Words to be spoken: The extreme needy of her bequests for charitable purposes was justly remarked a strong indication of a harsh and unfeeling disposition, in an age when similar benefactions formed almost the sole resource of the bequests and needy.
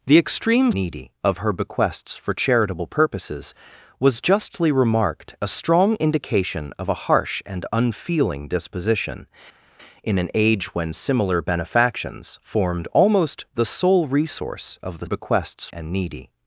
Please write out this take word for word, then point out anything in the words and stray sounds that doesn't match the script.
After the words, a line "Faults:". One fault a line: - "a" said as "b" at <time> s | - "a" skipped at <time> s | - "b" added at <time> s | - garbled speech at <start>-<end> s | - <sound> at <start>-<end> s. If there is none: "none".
The extreme needy of her bequests for charitable purposes was justly remarked a strong indication of a harsh and unfeeling disposition, in an age when similar benefactions formed almost the sole resource of the bequests and needy.
Faults:
none